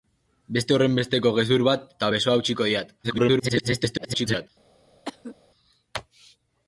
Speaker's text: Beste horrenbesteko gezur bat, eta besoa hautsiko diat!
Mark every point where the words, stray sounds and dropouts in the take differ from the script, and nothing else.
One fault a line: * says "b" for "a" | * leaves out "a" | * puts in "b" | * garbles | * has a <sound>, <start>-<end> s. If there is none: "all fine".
* garbles
* has a cough, 5.0-5.4 s